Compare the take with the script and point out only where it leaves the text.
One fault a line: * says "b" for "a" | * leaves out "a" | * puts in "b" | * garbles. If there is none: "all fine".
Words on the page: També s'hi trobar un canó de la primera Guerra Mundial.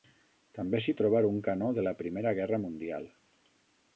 all fine